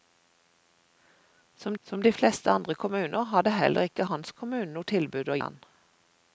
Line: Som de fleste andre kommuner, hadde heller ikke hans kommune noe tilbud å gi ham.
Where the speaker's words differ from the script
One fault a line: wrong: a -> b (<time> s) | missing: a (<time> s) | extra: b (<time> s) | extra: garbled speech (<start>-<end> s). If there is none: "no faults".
extra: som (1.8 s)
missing: gi (5.4 s)